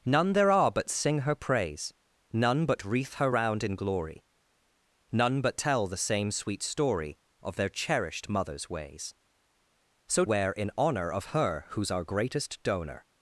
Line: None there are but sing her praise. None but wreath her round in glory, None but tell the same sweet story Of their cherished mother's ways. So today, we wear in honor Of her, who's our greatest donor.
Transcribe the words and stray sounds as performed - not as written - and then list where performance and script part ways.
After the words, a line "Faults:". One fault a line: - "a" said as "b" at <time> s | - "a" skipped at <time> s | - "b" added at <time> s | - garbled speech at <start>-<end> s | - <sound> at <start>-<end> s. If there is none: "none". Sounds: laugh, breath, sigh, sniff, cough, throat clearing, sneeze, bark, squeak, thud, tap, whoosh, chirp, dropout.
None there are but sing her praise. None but wreath her round in glory, None but tell the same sweet story Of their cherished mother's ways. So wear in honor Of her, who's our greatest donor.
Faults:
- "today we" skipped at 10.2 s